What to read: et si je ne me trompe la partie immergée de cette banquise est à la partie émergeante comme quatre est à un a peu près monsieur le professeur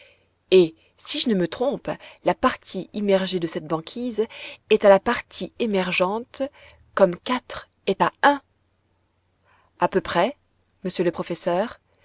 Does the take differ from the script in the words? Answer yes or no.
no